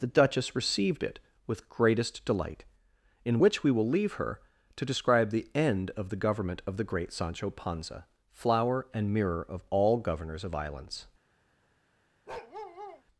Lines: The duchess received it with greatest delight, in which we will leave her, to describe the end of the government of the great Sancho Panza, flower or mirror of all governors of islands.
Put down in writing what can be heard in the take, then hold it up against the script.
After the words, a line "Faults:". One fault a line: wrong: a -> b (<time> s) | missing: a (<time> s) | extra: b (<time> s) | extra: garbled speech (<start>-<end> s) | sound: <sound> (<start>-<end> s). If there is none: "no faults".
The duchess received it with greatest delight, in which we will leave her, to describe the end of the government of the great Sancho Panza, flower and mirror of all governors of islands.
Faults:
wrong: or -> and (8.9 s)
sound: bark (12.3-13.0 s)